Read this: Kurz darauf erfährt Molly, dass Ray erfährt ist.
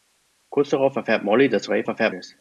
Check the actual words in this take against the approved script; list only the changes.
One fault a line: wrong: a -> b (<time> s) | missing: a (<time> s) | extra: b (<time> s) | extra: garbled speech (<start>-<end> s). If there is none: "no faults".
no faults